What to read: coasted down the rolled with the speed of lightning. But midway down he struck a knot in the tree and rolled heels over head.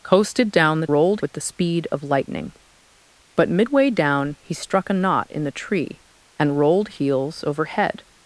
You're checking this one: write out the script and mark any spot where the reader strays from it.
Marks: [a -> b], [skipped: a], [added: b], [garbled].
coasted down the rolled with the speed of lightning. But midway down he struck a knot in the tree and rolled heels over head.